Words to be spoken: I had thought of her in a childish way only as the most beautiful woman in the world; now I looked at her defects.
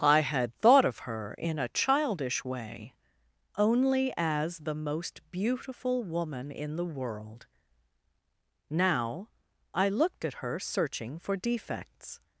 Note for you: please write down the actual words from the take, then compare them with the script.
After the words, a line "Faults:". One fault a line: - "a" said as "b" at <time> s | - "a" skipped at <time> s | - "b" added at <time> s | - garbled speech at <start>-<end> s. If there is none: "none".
I had thought of her in a childish way only as the most beautiful woman in the world; now I looked at her searching for defects.
Faults:
- "searching for" added at 10.6 s